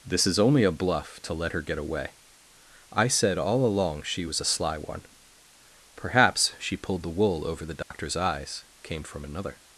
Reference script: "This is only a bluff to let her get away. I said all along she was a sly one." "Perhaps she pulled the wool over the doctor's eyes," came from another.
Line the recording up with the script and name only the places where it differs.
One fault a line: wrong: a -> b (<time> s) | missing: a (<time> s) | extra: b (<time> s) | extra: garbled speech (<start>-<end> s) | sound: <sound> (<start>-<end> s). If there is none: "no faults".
sound: dropout (7.8-7.9 s)